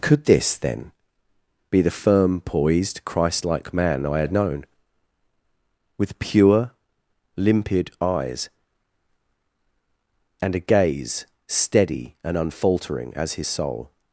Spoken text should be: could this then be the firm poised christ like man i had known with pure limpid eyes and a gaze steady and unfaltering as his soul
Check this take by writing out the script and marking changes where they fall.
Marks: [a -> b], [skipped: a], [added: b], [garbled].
could this then be the firm poised christ like man i had known with pure limpid eyes and a gaze steady and unfaltering as his soul